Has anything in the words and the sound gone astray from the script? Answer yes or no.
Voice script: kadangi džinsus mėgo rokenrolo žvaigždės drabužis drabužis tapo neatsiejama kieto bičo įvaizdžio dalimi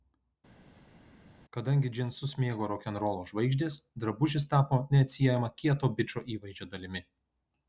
yes